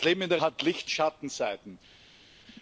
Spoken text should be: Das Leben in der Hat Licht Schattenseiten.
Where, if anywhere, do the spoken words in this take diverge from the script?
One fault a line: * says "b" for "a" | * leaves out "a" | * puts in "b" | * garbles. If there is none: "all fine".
all fine